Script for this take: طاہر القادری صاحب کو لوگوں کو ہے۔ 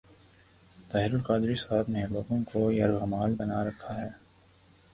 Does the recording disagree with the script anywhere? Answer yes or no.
yes